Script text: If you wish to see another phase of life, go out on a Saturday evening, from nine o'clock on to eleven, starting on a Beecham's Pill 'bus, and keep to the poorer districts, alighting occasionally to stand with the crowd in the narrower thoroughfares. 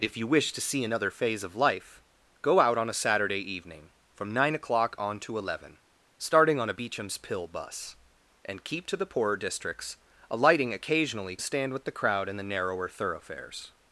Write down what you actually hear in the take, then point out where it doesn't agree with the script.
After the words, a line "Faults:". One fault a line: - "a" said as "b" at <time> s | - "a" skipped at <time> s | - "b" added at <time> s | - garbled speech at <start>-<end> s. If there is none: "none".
If you wish to see another phase of life, go out on a Saturday evening, from nine o'clock on to eleven, starting on a Beecham's Pill 'bus, and keep to the poorer districts, alighting occasionally stand with the crowd in the narrower thoroughfares.
Faults:
- "to" skipped at 11.3 s